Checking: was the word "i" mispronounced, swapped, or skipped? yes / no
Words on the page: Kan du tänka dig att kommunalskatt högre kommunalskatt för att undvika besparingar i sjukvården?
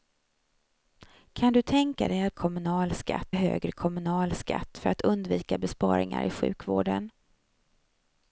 no